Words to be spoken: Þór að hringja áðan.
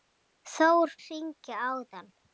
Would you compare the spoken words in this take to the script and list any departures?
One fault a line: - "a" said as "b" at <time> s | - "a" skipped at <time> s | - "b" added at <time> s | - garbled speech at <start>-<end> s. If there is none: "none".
none